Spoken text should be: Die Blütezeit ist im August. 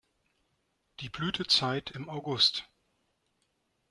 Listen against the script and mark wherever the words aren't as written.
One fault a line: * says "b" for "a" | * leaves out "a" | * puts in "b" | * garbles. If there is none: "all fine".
* leaves out "ist"